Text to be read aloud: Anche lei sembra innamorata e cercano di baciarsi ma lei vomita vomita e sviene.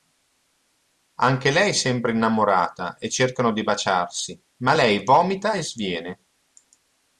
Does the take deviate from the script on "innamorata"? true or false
false